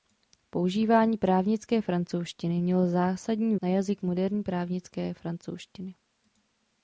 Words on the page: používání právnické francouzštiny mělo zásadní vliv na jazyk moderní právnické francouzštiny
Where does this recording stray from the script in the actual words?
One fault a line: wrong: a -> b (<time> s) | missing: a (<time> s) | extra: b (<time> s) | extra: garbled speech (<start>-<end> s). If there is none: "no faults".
missing: vliv (3.5 s)